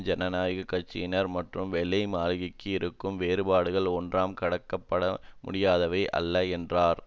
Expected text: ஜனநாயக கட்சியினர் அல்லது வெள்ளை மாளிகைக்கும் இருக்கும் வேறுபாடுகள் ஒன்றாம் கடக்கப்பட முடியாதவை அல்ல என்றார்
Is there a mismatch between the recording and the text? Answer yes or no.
yes